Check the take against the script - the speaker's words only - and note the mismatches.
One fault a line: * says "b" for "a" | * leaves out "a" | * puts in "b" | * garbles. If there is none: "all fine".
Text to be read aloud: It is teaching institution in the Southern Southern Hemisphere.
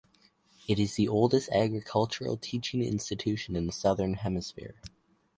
* puts in "the oldest agricultural"
* leaves out "Southern"